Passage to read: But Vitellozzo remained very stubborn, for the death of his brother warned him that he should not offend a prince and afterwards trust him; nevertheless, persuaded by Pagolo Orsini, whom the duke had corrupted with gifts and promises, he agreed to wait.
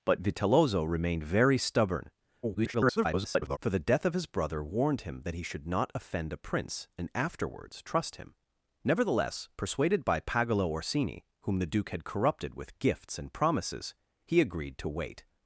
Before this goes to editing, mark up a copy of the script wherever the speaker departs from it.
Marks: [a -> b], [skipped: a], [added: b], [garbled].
But Vitellozzo remained very stubborn, [garbled] for the death of his brother warned him that he should not offend a prince and afterwards trust him; nevertheless, persuaded by Pagolo Orsini, whom the duke had corrupted with gifts and promises, he agreed to wait.